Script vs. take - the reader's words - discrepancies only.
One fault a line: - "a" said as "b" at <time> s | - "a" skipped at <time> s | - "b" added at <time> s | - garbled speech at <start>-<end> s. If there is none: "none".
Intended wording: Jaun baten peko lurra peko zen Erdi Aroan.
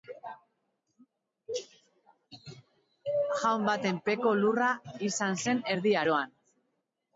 - "peko" said as "izan" at 5.1 s